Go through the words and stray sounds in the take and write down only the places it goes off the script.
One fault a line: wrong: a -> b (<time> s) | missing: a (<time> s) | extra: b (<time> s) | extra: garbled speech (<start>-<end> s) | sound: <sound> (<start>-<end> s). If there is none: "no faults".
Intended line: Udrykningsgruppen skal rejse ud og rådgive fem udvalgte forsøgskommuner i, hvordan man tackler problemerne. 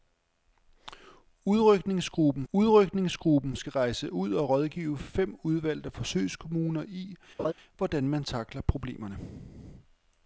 extra: udrykningsgruppen (2.5 s)
sound: laugh (7.4-7.5 s)